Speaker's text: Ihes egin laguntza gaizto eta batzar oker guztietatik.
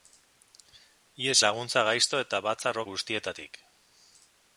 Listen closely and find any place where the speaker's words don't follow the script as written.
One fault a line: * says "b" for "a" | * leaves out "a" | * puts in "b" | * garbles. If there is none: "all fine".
* leaves out "egin"
* leaves out "oker"